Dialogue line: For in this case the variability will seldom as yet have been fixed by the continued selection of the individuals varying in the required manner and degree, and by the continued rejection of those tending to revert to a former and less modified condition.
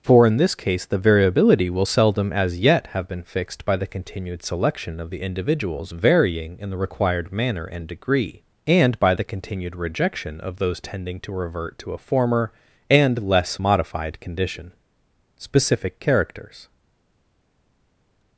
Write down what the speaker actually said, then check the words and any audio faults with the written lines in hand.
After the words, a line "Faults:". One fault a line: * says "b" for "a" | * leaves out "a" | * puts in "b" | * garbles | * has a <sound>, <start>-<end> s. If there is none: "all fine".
For in this case the variability will seldom as yet have been fixed by the continued selection of the individuals varying in the required manner and degree, and by the continued rejection of those tending to revert to a former and less modified condition. Specific Characters
Faults:
* puts in "Specific Characters"